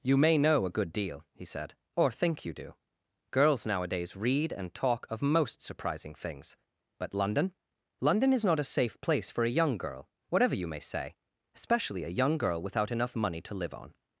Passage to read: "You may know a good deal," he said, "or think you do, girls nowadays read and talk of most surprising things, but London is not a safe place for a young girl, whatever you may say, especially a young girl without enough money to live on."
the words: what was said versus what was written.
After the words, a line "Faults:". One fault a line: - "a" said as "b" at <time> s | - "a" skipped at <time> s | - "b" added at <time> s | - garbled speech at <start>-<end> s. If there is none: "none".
"You may know a good deal," he said, "or think you do, girls nowadays read and talk of most surprising things, but London London is not a safe place for a young girl, whatever you may say, especially a young girl without enough money to live on."
Faults:
- "London" added at 8.0 s